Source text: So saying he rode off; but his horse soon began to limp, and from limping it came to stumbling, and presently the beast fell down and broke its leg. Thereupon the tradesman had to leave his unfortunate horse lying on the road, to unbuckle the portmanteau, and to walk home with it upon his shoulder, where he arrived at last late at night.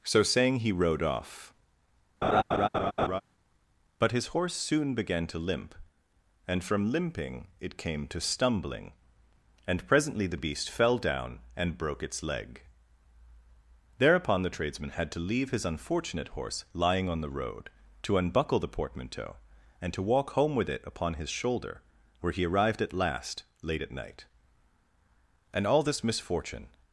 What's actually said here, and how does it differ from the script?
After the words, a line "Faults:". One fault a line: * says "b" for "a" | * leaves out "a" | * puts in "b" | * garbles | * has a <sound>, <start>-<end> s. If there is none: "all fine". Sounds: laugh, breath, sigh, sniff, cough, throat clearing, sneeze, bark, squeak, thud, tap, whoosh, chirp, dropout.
So saying he rode off; but his horse soon began to limp, and from limping it came to stumbling, and presently the beast fell down and broke its leg. Thereupon the tradesman had to leave his unfortunate horse lying on the road, to unbuckle the portmanteau, and to walk home with it upon his shoulder, where he arrived at last late at night. "And all this misfortune
Faults:
* has a laugh, 2.2-3.2 s
* puts in "And all this misfortune"